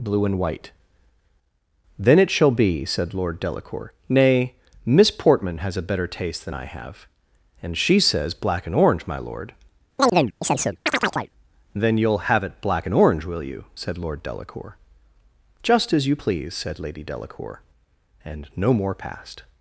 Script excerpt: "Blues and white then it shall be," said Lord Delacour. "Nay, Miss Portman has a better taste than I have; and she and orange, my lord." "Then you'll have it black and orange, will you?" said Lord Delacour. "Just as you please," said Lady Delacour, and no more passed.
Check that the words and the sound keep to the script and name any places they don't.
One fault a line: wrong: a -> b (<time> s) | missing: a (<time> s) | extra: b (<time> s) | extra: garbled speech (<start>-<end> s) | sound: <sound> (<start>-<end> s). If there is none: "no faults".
wrong: Blues -> Blue (0.0 s)
extra: says black (8.0 s)
sound: chirp (10.0-11.3 s)